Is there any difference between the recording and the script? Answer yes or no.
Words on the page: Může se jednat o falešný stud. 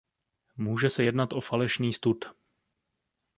no